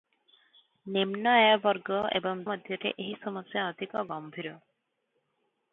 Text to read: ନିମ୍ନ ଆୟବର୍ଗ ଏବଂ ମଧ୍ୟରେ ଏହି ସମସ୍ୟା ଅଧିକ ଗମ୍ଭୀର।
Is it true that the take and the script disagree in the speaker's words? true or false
false